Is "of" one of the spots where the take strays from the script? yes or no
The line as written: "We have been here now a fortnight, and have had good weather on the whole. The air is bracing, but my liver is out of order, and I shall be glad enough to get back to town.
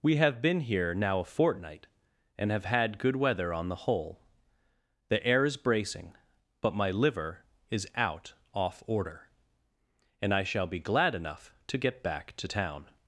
yes